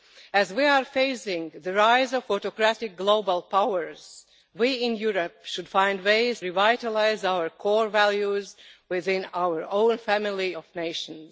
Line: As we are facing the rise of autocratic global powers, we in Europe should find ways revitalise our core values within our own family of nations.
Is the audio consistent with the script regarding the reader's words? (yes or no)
yes